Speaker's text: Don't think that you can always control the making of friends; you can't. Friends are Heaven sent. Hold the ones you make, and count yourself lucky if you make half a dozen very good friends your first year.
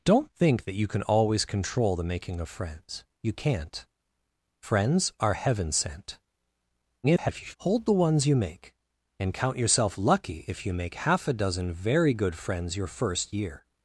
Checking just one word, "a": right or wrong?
right